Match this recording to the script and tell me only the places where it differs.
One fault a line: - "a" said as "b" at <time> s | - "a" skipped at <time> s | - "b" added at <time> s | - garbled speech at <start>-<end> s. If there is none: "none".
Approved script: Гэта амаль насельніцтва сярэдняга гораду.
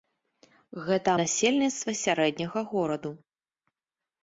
- "амаль" skipped at 1.1 s